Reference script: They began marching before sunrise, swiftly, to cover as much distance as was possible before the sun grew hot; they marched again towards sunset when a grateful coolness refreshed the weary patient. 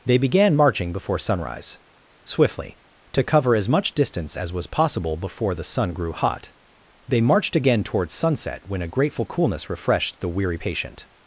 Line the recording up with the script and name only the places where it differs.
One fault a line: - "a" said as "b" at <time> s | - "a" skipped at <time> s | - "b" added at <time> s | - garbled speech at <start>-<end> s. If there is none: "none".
none